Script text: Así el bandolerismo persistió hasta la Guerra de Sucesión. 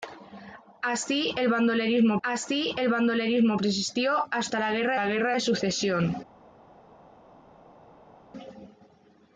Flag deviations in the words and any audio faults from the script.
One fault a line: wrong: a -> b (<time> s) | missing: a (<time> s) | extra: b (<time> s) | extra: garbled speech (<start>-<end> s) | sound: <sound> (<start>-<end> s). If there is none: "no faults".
extra: así el bandolerismo (2.2 s)
extra: la Guerra (4.9 s)